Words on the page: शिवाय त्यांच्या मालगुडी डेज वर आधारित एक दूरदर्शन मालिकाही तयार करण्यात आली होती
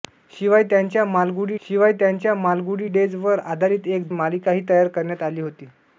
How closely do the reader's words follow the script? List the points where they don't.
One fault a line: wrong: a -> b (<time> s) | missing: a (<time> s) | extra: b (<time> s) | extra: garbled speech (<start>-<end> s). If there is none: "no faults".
extra: शिवाय त्यांच्या मालगुडी (1.6 s)
missing: दूरदर्शन (4.1 s)